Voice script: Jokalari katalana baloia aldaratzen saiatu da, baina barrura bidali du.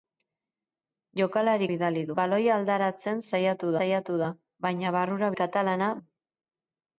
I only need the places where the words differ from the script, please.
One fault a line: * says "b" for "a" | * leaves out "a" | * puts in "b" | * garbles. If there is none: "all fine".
* says "bidali" for "katalana"
* puts in "saiatu"
* says "katalana" for "bidali"